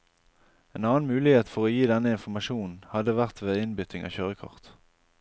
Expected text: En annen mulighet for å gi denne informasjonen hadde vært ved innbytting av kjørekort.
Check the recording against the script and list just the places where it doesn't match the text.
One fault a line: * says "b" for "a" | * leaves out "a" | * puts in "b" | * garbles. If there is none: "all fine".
all fine